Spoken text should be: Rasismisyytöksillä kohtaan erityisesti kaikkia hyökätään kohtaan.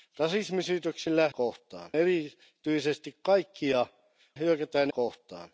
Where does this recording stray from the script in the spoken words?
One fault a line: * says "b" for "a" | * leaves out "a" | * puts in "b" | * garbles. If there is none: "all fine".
all fine